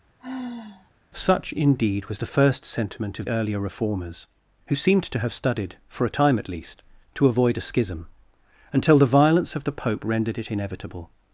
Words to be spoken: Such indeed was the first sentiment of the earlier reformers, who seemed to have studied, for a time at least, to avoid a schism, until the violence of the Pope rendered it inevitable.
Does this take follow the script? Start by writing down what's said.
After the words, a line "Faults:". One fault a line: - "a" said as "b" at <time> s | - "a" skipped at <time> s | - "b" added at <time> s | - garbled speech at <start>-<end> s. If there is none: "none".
Such indeed was the first sentiment of earlier reformers, who seemed to have studied, for a time at least, to avoid a schism, until the violence of the Pope rendered it inevitable.
Faults:
- "the" skipped at 3.3 s